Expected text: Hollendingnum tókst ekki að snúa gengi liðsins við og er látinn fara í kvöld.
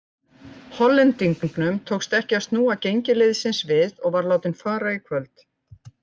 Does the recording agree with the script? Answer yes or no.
no